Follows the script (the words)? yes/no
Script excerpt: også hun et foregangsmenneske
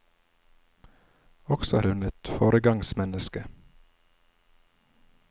yes